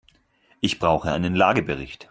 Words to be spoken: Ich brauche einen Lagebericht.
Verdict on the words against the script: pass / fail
pass